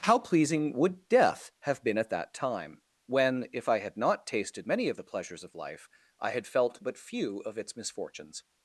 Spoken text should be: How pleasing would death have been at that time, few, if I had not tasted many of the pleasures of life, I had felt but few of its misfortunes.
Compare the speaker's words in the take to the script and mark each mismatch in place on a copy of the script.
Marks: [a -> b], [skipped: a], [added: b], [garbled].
How pleasing would death have been at that time, [few, -> when] if I had not tasted many of the pleasures of life, I had felt but few of its misfortunes.